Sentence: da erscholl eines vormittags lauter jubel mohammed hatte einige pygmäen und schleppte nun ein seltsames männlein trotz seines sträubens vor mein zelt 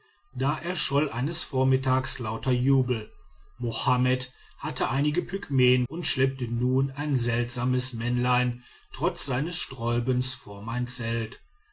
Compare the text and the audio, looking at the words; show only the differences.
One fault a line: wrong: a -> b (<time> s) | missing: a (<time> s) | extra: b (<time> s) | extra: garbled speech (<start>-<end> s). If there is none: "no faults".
no faults